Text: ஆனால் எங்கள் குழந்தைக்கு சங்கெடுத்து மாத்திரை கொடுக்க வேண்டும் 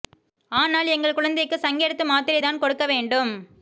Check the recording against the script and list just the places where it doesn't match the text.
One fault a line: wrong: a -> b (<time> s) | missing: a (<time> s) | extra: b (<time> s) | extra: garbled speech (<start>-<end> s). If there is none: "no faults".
extra: தான் (2.4 s)